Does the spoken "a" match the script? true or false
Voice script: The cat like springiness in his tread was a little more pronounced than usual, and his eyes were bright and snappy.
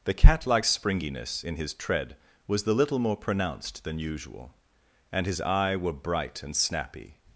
false